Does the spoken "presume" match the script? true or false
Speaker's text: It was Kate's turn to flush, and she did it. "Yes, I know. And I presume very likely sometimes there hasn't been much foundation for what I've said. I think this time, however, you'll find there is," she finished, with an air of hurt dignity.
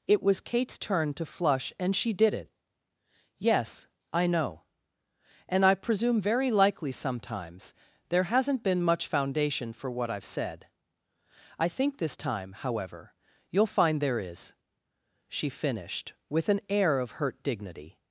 true